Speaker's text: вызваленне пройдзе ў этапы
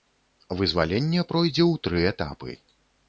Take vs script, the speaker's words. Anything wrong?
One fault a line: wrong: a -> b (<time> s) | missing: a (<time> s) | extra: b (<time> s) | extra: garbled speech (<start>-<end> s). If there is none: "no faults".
extra: тры (1.9 s)